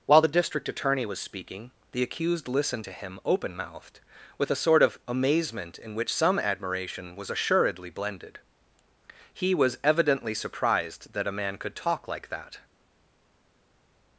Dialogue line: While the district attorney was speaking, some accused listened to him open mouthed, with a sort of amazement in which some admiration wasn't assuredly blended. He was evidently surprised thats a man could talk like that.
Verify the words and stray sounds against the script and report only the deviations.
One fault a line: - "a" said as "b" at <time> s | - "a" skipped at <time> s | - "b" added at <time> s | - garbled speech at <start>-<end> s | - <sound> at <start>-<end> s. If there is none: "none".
- "some" said as "the" at 1.9 s
- "wasn't" said as "was" at 7.1 s
- "thats" said as "that" at 11.1 s